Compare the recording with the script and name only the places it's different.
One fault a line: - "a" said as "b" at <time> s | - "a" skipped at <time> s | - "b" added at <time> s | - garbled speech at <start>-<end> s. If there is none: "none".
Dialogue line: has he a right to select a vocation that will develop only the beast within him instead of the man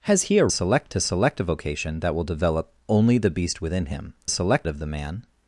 - "right" said as "select" at 0.5 s
- "instead" said as "select" at 4.3 s